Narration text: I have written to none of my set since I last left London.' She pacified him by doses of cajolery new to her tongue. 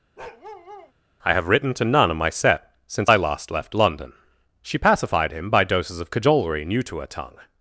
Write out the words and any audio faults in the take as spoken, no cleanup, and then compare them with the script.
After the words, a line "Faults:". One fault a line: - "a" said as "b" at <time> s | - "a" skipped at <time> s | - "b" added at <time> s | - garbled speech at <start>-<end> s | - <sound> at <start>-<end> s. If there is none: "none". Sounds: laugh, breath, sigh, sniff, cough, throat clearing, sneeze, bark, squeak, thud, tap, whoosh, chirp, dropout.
I have written to none of my set since I last left London.' She pacified him by doses of cajolery new to her tongue.
Faults:
- bark at 0.2-0.9 s